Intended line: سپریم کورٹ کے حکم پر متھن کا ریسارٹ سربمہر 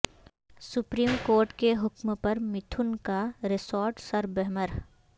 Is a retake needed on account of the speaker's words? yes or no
no